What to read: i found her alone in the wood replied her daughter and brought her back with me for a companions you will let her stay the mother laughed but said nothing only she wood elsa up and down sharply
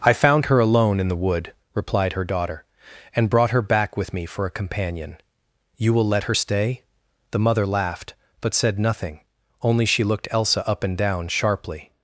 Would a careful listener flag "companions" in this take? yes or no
yes